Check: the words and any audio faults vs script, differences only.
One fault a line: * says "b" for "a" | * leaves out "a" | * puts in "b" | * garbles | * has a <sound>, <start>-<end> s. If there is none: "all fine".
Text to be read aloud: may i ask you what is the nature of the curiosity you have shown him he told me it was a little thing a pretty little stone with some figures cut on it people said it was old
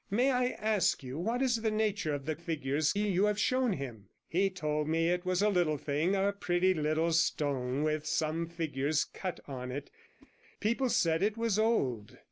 * says "figures" for "curiosity"
* has a whoosh, 10.2-10.3 s